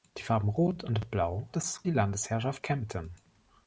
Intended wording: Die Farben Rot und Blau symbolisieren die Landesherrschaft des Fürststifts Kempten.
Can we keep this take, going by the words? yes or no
no